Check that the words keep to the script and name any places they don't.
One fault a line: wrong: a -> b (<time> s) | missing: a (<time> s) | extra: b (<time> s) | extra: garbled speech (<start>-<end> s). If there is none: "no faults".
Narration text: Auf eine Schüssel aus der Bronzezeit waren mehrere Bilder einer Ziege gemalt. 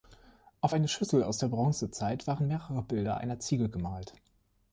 no faults